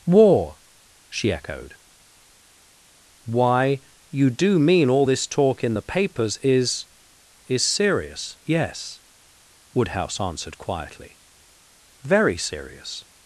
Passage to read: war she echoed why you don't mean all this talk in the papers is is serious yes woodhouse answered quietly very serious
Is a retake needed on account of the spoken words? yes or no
yes